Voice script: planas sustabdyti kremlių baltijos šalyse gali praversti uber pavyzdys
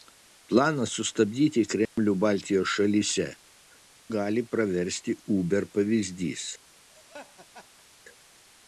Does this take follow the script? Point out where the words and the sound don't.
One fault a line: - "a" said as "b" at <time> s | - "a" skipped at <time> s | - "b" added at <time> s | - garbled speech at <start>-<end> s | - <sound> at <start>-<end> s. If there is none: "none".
- dropout at 1.9-2.0 s
- laugh at 6.9-7.9 s